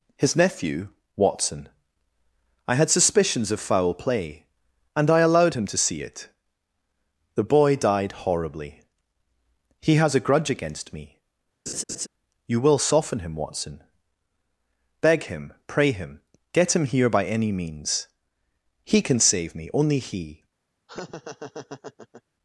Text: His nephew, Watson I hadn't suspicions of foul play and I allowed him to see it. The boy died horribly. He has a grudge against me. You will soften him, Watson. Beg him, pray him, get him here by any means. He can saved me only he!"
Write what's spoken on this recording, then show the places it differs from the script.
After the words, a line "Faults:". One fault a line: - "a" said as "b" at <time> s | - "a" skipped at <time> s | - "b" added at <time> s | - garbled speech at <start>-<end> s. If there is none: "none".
His nephew, Watson I had suspicions of foul play and I allowed him to see it. The boy died horribly. He has a grudge against me. You will soften him, Watson. Beg him, pray him, get him here by any means. He can save me only he!"
Faults:
- "hadn't" said as "had" at 2.8 s
- "saved" said as "save" at 19.2 s